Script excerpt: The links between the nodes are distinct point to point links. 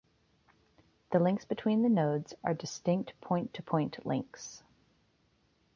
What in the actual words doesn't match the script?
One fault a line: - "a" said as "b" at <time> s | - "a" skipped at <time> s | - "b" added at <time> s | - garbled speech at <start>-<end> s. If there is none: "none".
none